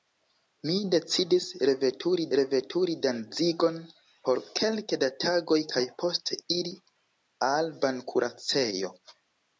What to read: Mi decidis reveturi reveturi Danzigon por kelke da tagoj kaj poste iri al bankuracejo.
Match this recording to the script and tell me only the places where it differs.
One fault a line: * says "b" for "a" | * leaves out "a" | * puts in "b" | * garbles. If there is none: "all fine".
all fine